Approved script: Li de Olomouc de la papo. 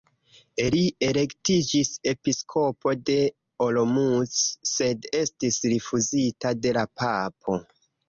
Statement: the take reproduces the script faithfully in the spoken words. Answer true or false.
false